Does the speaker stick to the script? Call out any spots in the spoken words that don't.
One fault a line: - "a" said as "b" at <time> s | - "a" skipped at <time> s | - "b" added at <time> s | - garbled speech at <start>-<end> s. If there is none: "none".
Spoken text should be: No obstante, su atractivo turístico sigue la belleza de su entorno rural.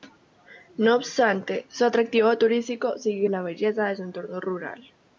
none